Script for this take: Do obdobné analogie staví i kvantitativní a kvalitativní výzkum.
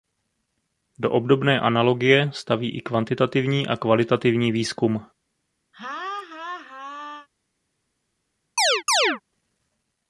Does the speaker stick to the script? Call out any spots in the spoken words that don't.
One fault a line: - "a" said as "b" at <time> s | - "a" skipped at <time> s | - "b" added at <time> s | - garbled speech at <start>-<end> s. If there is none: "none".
none